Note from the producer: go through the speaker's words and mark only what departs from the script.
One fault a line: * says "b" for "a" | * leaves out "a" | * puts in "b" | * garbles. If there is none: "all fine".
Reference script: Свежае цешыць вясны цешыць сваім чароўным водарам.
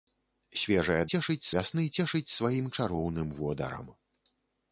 all fine